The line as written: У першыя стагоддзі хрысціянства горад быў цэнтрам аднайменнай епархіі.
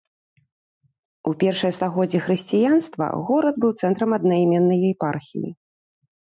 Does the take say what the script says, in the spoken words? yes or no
yes